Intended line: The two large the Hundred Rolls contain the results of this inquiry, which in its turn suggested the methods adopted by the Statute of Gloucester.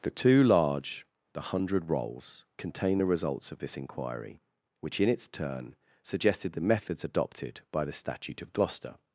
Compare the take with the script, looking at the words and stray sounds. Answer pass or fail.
pass